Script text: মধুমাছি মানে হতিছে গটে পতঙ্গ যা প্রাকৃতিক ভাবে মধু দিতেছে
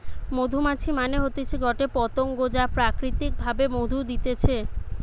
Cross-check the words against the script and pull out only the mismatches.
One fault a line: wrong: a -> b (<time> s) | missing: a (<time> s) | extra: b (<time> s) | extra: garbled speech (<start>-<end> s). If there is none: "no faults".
no faults